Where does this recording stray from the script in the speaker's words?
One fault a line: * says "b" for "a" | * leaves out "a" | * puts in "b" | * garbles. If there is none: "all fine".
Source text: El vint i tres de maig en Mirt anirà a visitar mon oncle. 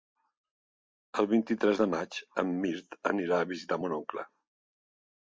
all fine